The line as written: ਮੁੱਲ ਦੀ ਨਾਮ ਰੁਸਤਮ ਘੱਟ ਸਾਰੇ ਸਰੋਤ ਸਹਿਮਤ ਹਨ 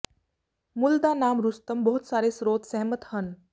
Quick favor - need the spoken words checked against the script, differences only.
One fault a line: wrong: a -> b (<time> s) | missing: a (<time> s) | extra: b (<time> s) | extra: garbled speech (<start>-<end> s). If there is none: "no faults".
wrong: ਦੀ -> ਦਾ (1.0 s)
wrong: ਘੱਟ -> ਬਹੁਤ (1.8 s)